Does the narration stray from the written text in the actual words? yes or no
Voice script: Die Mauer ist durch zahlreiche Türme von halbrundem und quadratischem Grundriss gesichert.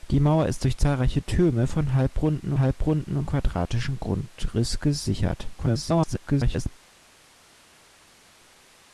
yes